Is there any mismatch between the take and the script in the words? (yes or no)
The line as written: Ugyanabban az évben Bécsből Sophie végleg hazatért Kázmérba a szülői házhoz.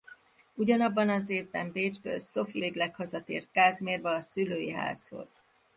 no